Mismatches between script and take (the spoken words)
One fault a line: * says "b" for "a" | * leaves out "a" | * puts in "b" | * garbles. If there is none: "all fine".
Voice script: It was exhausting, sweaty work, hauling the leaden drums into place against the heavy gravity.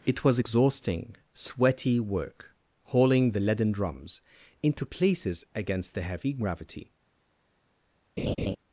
* says "places" for "place"